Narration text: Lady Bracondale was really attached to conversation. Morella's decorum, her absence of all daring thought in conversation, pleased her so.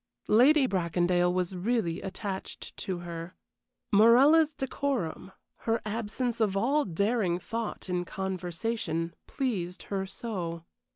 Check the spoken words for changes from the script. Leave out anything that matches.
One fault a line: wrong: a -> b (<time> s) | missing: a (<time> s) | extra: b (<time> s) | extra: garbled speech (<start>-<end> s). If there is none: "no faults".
wrong: conversation -> her (3.0 s)